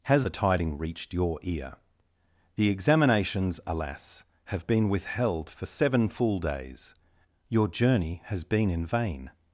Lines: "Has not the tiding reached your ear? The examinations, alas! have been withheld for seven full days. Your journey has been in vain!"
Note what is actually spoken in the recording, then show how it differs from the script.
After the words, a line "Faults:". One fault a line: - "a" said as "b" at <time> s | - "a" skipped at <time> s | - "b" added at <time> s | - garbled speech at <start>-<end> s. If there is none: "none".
"Has the tiding reached your ear? The examinations, alas! have been withheld for seven full days. Your journey has been in vain!"
Faults:
- "not" skipped at 0.3 s